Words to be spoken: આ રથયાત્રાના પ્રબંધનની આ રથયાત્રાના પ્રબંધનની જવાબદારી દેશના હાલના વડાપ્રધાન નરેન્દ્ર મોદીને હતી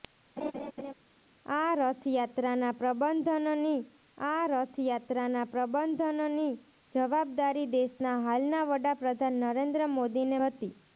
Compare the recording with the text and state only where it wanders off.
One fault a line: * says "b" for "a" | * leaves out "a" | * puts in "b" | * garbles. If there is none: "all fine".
all fine